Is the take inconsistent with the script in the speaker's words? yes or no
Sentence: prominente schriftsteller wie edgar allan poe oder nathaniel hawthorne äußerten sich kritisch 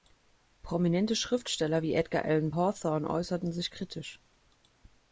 yes